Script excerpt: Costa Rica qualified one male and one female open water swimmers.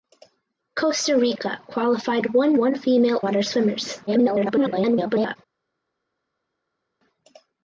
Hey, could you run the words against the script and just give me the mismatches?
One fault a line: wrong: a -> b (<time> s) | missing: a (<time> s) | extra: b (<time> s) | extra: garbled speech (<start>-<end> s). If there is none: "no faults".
missing: male and (2.6 s)
missing: open (3.2 s)
extra: garbled speech (4.1-5.4 s)